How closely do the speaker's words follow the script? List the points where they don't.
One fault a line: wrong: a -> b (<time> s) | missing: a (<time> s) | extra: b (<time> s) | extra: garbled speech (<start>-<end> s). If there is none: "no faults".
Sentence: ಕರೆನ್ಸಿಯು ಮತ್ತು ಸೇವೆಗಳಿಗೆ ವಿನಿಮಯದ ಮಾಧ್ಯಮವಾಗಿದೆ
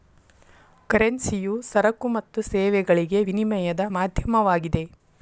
extra: ಸರಕು (1.7 s)